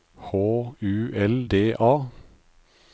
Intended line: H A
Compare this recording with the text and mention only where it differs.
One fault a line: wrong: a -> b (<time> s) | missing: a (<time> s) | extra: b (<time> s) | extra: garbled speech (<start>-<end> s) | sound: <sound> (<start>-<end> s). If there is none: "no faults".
extra: U L D (0.3 s)